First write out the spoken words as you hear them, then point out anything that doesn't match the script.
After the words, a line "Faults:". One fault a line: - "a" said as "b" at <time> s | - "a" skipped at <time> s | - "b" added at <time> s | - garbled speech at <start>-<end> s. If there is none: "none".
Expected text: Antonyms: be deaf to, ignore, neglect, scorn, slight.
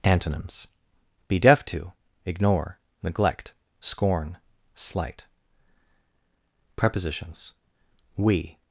Antonyms: be deaf to, ignore, neglect, scorn, slight. Prepositions: We
Faults:
- "Prepositions We" added at 6.7 s